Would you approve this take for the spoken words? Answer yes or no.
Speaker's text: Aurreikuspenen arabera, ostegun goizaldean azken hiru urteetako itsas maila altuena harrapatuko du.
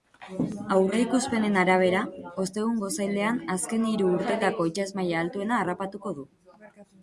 yes